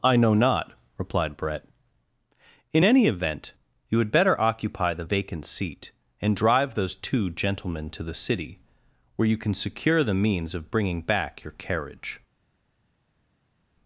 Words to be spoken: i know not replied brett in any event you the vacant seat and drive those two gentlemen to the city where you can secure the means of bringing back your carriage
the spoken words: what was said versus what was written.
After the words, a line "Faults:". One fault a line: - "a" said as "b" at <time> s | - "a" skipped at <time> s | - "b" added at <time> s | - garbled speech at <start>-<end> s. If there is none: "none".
i know not replied brett in any event you had better occupy the vacant seat and drive those two gentlemen to the city where you can secure the means of bringing back your carriage
Faults:
- "had better occupy" added at 4.0 s